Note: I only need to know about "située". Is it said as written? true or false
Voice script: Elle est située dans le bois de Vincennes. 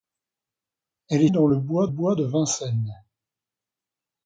false